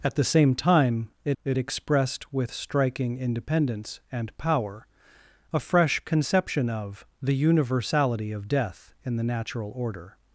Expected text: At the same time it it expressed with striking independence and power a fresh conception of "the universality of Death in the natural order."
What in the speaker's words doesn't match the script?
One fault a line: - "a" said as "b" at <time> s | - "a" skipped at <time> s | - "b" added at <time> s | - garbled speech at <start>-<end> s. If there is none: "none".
none